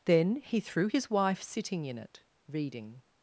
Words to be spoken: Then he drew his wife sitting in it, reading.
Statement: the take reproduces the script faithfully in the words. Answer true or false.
false